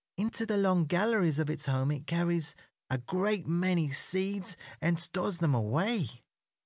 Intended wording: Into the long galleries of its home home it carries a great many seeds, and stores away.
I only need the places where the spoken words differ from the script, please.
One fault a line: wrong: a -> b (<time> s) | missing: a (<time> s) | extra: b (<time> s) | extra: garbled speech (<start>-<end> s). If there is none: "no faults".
missing: home (1.9 s)
extra: them (5.4 s)